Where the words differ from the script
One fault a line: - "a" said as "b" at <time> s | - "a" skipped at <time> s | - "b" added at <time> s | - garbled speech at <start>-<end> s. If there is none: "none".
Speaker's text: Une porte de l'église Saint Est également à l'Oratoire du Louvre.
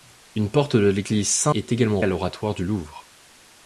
none